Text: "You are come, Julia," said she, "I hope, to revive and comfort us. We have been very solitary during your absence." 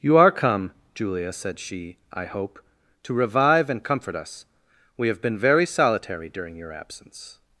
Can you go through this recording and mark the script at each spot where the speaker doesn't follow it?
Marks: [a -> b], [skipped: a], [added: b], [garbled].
"You are come, Julia," said she, "I hope, to revive and comfort us. We have been very solitary during your absence."